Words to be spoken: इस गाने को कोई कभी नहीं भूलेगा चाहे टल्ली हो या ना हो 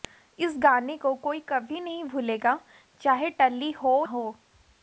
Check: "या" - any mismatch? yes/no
yes